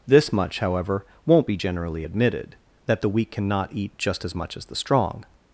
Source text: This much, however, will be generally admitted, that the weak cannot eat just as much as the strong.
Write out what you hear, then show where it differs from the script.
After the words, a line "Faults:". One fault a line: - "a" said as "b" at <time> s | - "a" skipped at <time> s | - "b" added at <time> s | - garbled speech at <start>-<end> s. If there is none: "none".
This much, however, won't be generally admitted, that the weak cannot eat just as much as the strong.
Faults:
- "will" said as "won't" at 1.2 s